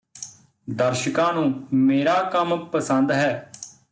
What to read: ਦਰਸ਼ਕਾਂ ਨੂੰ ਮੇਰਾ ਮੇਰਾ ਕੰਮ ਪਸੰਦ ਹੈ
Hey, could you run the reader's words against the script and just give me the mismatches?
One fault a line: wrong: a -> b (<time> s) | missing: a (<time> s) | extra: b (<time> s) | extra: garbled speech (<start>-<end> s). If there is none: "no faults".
missing: ਮੇਰਾ (2.2 s)